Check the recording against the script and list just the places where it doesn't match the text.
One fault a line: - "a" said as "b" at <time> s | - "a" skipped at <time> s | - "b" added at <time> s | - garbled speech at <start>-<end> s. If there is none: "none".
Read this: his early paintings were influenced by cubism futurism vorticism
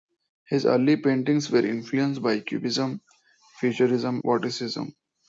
none